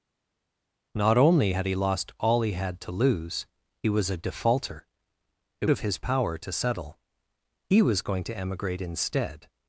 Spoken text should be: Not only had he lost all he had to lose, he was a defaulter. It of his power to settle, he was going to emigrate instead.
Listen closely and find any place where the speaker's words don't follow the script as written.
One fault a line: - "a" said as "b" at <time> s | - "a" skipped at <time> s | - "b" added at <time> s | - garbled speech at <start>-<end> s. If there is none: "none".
none